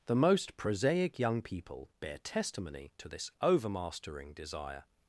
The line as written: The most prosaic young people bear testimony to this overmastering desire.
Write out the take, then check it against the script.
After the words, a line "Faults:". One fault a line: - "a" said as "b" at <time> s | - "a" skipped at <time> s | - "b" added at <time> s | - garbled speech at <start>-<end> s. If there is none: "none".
The most prosaic young people bear testimony to this overmastering desire.
Faults:
none